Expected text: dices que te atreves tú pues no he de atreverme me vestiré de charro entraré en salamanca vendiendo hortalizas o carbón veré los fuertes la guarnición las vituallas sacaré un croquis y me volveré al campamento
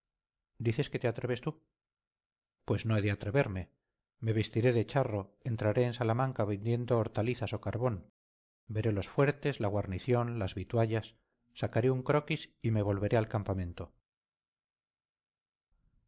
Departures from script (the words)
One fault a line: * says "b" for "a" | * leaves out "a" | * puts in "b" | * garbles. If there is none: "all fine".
all fine